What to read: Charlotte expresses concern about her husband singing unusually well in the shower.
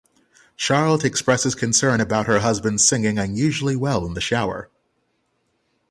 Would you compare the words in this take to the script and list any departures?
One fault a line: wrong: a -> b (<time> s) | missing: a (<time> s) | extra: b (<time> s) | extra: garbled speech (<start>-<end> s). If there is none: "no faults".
no faults